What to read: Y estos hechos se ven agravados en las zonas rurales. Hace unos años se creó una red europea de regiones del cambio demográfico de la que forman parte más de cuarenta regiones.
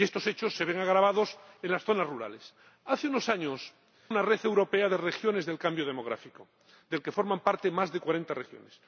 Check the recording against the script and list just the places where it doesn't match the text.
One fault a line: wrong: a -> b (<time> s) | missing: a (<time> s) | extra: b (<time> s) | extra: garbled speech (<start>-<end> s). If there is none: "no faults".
missing: se creó (3.7 s)